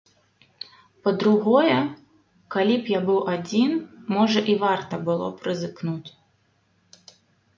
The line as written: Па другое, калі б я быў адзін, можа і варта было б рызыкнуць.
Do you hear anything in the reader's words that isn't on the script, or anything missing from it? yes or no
no